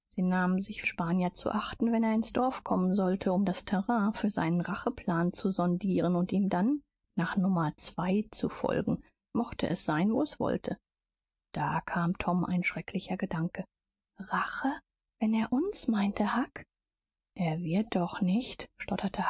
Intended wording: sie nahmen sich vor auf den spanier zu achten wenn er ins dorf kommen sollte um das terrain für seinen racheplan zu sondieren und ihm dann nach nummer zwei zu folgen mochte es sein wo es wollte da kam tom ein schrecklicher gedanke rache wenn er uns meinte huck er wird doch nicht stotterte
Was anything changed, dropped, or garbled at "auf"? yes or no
yes